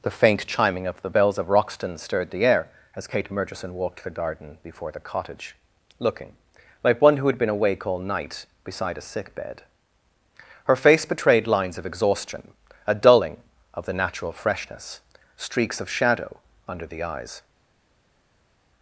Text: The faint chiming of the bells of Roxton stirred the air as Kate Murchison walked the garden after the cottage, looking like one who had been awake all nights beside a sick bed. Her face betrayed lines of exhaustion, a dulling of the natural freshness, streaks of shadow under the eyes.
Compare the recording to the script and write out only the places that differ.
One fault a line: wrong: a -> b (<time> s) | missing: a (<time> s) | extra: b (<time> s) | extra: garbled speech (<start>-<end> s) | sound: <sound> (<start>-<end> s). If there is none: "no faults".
wrong: after -> before (4.6 s)
wrong: nights -> night (8.0 s)